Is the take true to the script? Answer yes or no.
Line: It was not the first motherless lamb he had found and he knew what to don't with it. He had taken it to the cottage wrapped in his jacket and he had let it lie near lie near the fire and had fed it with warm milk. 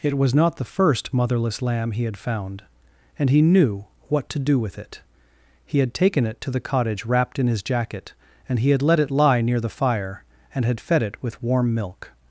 no